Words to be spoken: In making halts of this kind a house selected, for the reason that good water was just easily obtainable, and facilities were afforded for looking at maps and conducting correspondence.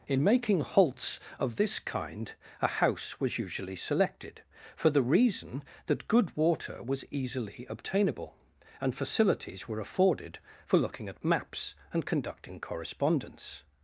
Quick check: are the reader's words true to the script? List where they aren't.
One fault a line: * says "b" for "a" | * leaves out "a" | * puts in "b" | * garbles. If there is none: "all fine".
* puts in "was usually"
* leaves out "just"